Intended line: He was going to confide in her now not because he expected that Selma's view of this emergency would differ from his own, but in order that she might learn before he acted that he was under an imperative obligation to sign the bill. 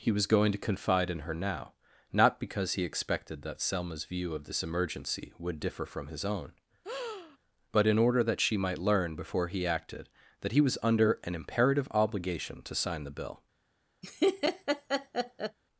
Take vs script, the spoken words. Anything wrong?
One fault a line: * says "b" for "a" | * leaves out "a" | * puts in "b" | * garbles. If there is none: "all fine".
all fine